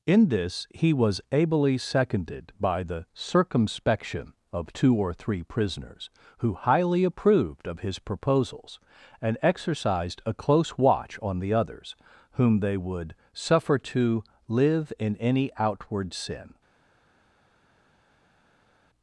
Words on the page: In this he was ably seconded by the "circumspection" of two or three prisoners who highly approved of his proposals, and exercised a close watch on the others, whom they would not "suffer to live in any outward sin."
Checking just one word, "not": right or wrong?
wrong